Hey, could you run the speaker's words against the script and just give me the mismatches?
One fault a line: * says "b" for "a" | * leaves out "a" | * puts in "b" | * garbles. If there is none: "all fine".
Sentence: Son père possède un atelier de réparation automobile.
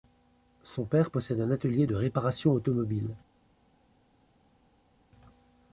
all fine